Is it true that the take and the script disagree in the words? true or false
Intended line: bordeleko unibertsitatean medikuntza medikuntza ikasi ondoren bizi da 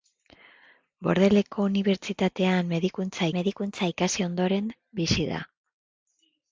false